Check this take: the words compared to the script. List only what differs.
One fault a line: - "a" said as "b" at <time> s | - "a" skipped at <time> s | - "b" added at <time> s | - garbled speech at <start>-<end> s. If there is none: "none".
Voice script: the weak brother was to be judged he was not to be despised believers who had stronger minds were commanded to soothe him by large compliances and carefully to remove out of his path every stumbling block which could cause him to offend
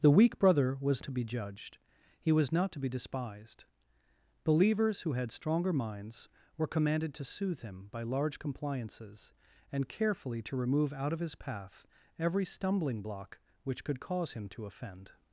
none